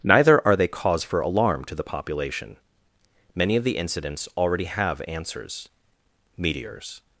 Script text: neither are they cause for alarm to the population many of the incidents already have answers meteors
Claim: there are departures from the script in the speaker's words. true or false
false